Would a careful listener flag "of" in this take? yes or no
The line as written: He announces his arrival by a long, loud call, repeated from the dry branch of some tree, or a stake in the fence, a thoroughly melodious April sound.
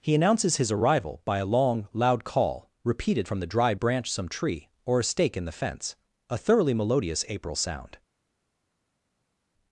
yes